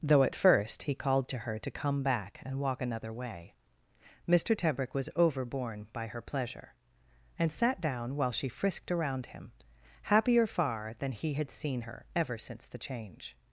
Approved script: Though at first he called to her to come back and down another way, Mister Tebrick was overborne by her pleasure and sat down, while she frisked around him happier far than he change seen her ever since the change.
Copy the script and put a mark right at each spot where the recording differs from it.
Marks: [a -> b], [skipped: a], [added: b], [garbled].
Though at first he called to her to come back and [down -> walk] another way, Mister Tebrick was overborne by her pleasure and sat down, while she frisked around him happier far than he [change -> had] seen her ever since the change.